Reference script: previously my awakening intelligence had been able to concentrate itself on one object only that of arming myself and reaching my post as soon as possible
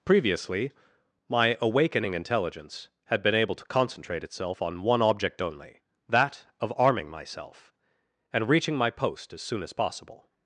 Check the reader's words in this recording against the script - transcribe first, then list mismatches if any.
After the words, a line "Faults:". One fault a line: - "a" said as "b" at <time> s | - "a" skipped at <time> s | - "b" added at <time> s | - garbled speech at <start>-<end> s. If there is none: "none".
previously my awakening intelligence had been able to concentrate itself on one object only that of arming myself and reaching my post as soon as possible
Faults:
none